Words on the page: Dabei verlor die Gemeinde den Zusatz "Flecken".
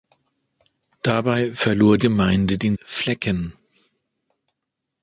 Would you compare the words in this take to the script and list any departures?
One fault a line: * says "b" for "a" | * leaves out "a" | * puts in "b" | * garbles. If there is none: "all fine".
* leaves out "die"
* leaves out "Zusatz"